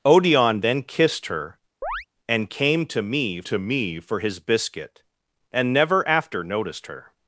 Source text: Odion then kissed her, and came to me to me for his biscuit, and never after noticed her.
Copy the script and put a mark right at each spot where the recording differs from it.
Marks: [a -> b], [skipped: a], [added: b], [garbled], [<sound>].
Odion then kissed her, [chirp] and came to me to me for his biscuit, and never after noticed her.